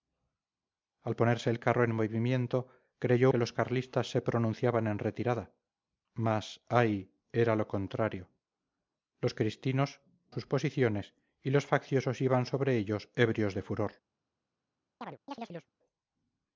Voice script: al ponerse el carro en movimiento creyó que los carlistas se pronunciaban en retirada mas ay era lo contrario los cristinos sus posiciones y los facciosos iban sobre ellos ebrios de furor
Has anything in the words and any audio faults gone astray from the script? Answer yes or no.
yes